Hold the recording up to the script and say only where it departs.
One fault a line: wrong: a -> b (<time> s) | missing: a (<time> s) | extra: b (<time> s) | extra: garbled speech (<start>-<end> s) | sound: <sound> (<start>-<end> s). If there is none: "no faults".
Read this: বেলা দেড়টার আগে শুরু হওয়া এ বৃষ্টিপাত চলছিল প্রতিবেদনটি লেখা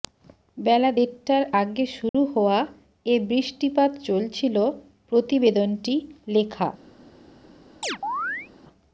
sound: dropout (2.1-2.1 s)
sound: chirp (7.8-8.5 s)